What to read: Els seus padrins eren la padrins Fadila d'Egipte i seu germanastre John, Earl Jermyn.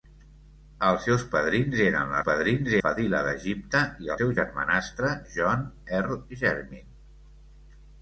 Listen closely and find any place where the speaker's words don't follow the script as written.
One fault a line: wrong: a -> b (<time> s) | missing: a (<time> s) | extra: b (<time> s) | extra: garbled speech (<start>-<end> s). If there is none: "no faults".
no faults